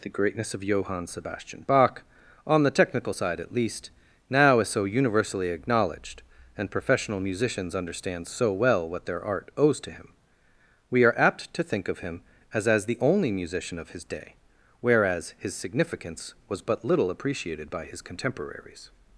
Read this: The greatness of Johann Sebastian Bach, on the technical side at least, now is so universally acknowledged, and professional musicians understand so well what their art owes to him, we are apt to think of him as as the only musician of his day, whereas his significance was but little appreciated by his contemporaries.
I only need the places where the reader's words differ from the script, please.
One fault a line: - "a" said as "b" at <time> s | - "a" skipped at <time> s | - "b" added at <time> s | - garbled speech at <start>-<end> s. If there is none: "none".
none